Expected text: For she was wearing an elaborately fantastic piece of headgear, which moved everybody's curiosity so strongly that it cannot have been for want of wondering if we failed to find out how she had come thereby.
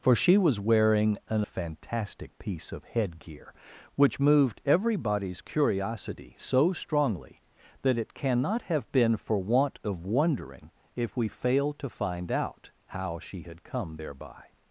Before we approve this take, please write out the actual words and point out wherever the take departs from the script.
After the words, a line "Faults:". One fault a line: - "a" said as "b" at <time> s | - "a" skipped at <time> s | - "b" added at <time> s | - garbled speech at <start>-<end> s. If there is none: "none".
For she was wearing an fantastic piece of headgear, which moved everybody's curiosity so strongly that it cannot have been for want of wondering if we failed to find out how she had come thereby.
Faults:
- "elaborately" skipped at 1.4 s